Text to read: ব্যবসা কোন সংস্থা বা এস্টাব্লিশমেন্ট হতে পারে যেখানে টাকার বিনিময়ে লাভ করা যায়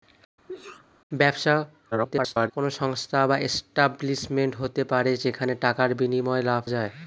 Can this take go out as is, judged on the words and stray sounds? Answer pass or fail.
fail